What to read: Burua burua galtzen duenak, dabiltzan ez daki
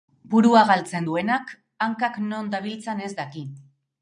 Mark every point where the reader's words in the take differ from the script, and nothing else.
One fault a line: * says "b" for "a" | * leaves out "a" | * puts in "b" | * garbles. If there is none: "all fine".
* leaves out "burua"
* puts in "hankak non"